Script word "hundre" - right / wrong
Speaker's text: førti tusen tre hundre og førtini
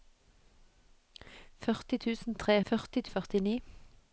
wrong